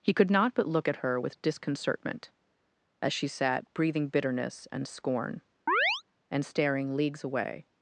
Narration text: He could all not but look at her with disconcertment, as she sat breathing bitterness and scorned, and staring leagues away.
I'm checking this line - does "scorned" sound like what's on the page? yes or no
no